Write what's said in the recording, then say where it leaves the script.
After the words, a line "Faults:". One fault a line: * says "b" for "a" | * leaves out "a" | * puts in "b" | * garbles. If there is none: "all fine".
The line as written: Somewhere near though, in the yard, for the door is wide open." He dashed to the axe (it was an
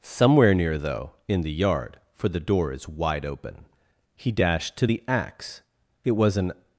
Somewhere near though, in the yard, for the door is wide open." He dashed to the axe (it was an
Faults:
all fine